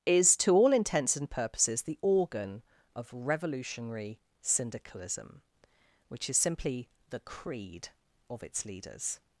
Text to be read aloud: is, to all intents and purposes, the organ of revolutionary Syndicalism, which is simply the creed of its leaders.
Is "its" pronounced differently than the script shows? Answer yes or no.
no